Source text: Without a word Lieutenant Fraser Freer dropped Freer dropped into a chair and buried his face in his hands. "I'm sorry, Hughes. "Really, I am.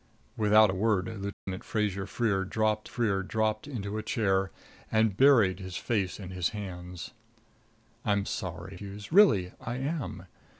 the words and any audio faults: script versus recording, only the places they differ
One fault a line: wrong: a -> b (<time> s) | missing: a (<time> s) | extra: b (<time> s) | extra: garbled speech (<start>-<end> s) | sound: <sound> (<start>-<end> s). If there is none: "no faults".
sound: dropout (1.3-1.5 s)